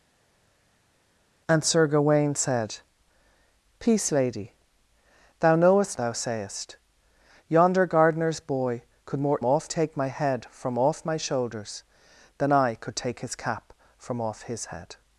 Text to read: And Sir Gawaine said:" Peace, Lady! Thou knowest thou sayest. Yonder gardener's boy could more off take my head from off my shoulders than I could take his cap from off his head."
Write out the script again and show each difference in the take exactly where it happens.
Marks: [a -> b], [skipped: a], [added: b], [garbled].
And Sir Gawaine said:" Peace, Lady! Thou knowest thou sayest. Yonder gardener's boy could more off take my head from off my shoulders than I could take his cap from off his head."